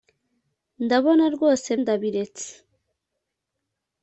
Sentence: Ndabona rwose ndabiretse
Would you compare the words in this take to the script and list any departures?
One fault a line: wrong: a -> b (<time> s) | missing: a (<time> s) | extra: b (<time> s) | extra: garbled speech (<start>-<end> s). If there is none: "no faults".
no faults